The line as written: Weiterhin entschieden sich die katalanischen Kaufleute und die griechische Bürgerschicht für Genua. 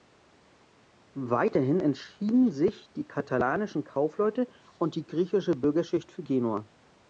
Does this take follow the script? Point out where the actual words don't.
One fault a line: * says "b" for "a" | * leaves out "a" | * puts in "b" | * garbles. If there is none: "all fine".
all fine